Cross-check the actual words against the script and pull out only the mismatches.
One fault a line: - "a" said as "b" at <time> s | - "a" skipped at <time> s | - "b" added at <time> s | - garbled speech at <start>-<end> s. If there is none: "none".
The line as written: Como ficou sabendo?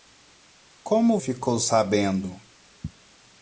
none